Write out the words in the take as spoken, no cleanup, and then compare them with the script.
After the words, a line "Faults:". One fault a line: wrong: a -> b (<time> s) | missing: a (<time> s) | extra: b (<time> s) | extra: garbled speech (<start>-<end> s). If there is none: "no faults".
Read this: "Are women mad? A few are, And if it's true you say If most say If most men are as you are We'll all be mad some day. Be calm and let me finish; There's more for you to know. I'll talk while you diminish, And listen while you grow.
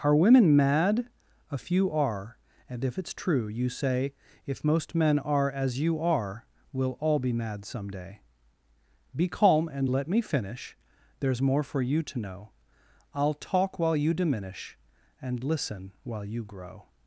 "Are women mad? A few are, And if it's true you say If most men are as you are We'll all be mad some day. Be calm and let me finish; There's more for you to know. I'll talk while you diminish, And listen while you grow.
Faults:
missing: say If most (5.0 s)